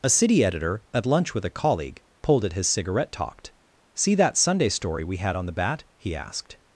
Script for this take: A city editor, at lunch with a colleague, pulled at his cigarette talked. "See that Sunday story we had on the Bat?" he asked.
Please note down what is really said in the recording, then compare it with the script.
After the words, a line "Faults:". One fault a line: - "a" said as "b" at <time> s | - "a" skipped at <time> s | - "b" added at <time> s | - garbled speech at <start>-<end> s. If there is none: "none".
A city editor, at lunch with a colleague, pulled at his cigarette talked. "See that Sunday story we had on the Bat?" he asked.
Faults:
none